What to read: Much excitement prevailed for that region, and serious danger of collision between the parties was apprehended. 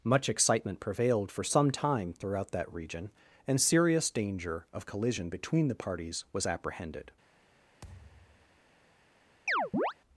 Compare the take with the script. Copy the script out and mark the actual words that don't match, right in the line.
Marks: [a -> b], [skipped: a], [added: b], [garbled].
Much excitement prevailed for [added: some time throughout] that region, and serious danger of collision between the parties was apprehended.